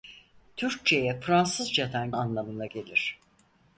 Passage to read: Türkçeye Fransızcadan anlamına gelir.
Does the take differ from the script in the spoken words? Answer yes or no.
no